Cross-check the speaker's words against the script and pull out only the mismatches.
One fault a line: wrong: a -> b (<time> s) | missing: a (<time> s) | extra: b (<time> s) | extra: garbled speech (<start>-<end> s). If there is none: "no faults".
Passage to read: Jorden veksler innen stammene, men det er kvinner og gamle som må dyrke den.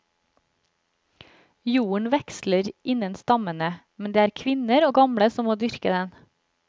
no faults